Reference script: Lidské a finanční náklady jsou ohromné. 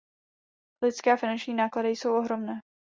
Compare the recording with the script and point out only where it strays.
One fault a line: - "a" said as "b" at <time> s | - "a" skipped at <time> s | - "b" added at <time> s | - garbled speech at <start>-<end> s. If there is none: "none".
none